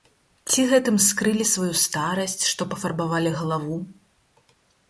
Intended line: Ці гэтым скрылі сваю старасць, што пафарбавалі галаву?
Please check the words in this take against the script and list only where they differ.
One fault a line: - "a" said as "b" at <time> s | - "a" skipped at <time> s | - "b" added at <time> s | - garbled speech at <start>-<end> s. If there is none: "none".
none